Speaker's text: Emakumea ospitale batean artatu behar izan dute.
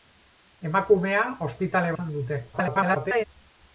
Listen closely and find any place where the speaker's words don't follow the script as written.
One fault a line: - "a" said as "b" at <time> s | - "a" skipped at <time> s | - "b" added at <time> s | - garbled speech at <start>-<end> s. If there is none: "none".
- "batean artatu behar" skipped at 1.9 s
- garbled speech at 2.5-3.3 s